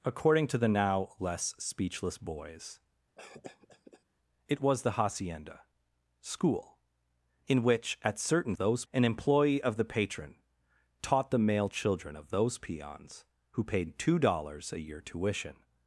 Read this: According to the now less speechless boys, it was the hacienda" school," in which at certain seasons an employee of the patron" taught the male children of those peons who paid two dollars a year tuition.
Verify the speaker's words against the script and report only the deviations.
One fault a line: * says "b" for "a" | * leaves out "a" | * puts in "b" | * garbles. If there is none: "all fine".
* says "those" for "seasons"